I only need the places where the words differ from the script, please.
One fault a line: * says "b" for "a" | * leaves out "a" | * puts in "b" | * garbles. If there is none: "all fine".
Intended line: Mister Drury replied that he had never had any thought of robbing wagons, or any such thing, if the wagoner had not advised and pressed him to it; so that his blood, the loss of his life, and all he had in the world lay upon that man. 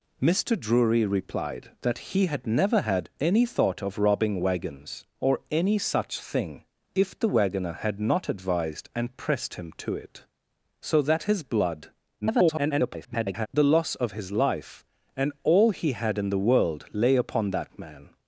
* garbles